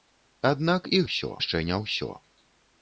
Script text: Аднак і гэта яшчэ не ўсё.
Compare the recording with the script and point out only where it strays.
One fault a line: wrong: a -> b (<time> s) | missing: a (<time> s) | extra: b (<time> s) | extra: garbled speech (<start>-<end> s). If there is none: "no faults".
wrong: гэта -> ўсё (1.1 s)